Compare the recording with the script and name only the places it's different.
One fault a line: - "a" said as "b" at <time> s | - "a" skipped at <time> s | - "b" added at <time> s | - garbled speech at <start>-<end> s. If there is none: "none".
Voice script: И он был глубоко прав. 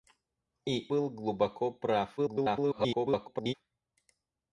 - "он" skipped at 0.9 s
- garbled speech at 2.2-3.5 s